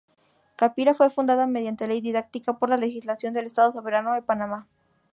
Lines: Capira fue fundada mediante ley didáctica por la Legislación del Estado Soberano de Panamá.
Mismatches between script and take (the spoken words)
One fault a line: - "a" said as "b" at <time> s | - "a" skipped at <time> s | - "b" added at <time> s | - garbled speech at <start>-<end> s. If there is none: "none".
none